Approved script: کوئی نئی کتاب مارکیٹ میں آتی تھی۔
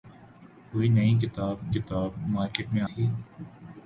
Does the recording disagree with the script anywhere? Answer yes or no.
yes